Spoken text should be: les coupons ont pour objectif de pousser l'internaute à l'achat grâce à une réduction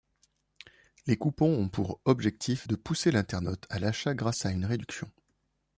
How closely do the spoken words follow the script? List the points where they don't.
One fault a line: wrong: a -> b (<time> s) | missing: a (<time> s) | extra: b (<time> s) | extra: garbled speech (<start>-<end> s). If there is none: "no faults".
no faults